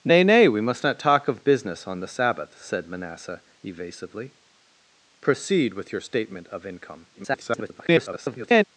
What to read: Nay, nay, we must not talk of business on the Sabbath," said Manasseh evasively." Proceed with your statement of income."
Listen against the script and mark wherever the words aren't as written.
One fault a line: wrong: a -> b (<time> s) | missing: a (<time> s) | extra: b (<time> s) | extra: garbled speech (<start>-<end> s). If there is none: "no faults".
extra: garbled speech (7.1-8.6 s)